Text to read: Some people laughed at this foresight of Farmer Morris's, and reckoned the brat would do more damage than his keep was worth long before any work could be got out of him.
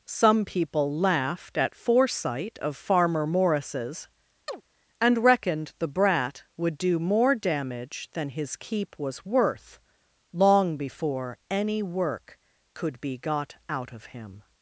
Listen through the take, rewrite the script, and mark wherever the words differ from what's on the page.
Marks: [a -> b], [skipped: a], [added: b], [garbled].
Some people laughed at [skipped: this] foresight of Farmer Morris's, and reckoned the brat would do more damage than his keep was worth long before any work could be got out of him.